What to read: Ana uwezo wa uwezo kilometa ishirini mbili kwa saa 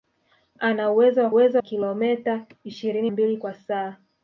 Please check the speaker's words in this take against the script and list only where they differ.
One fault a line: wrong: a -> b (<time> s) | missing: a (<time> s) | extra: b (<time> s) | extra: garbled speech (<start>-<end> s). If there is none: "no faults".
no faults